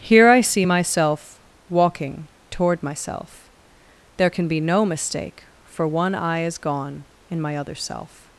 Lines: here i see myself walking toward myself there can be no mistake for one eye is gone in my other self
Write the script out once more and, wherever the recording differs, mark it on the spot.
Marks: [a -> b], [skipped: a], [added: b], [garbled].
here i see myself walking toward myself there can be no mistake for one eye is gone in my other self